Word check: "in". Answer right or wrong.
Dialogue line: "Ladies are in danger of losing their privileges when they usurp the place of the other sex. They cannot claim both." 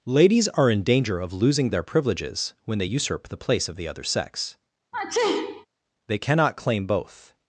right